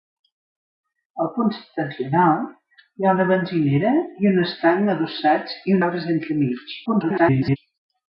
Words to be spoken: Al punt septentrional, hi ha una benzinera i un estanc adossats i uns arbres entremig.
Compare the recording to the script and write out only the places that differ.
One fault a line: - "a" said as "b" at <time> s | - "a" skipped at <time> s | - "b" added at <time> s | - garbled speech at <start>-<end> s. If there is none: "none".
- "uns" skipped at 5.8 s
- garbled speech at 6.9-7.6 s